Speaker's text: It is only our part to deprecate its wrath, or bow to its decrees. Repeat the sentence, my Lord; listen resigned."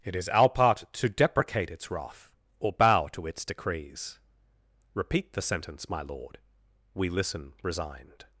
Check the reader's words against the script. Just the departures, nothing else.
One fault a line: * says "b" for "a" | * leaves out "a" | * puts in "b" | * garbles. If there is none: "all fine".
* leaves out "only"
* puts in "we"